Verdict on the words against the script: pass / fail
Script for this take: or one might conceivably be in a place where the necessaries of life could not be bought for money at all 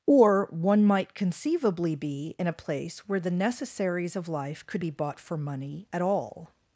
fail